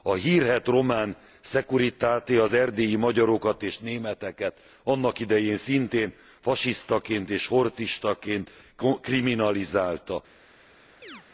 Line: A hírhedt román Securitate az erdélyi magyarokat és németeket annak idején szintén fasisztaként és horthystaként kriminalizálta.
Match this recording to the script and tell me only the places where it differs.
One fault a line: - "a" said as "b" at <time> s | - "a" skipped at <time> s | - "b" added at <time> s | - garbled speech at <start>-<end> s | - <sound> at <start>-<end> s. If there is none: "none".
- chirp at 11.0-11.2 s